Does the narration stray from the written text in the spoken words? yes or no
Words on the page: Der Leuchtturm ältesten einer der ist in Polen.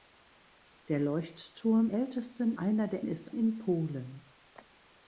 no